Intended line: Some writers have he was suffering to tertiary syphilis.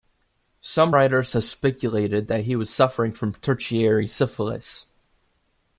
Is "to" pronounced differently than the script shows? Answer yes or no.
yes